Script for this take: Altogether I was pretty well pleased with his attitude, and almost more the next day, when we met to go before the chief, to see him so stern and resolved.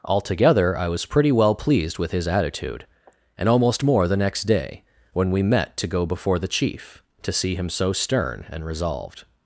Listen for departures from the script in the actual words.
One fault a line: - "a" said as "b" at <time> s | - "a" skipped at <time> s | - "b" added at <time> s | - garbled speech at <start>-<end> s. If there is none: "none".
none